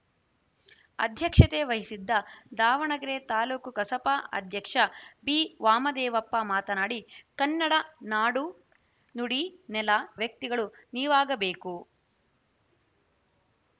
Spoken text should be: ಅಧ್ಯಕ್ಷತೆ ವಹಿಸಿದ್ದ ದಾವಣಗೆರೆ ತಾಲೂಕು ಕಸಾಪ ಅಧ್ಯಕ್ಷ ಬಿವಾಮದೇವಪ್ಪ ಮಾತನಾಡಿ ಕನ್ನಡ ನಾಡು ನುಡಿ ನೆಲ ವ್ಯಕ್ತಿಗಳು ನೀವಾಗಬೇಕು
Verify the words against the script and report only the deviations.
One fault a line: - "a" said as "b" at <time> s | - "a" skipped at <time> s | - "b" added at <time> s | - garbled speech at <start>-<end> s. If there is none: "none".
none